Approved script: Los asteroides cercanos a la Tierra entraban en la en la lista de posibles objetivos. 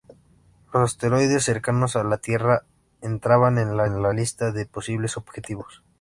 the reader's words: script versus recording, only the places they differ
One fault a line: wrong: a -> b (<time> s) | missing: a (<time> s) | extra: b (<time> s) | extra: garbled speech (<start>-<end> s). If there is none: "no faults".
no faults